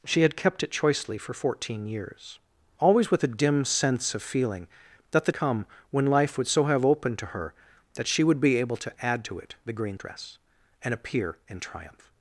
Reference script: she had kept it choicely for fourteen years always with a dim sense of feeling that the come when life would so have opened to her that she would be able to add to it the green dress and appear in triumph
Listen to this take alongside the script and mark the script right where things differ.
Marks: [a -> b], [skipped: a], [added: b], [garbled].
she had kept it choicely for fourteen years always with a dim sense of feeling that the come when life would so have opened to her that she would be able to add to it the green dress and appear in triumph